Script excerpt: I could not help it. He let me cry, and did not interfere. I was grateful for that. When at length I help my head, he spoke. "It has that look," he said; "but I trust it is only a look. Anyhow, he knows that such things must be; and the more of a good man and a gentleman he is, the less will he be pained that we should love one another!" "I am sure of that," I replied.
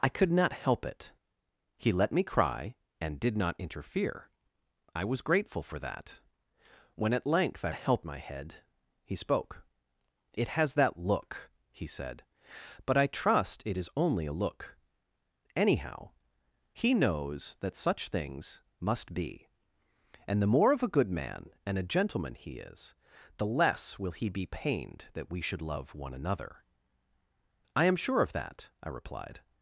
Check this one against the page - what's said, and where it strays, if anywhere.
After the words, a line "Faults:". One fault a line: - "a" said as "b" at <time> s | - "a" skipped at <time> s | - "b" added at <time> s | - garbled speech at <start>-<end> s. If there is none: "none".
I could not help it. He let me cry, and did not interfere. I was grateful for that. When at length I help my head, he spoke. "It has that look," he said; "but I trust it is only a look. Anyhow, he knows that such things must be; and the more of a good man and a gentleman he is, the less will he be pained that we should love one another!" "I am sure of that," I replied.
Faults:
none